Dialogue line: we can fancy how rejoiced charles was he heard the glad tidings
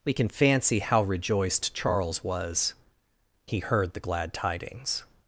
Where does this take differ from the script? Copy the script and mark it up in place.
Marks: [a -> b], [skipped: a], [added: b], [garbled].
we can fancy how rejoiced charles was he heard the glad tidings